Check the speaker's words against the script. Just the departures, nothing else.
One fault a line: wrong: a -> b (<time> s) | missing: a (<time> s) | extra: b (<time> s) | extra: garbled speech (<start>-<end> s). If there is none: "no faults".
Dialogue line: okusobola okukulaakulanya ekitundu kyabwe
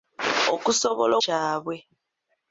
missing: okukulaakulanya ekitundu (1.1 s)